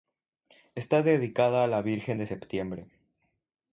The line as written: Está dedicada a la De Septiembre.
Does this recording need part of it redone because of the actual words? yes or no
yes